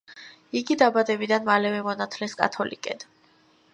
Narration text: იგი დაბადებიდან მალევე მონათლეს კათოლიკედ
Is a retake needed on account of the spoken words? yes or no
no